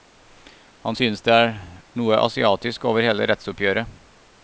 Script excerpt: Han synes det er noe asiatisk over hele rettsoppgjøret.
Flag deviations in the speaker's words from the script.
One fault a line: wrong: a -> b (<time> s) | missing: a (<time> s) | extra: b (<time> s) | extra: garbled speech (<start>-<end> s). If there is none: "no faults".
no faults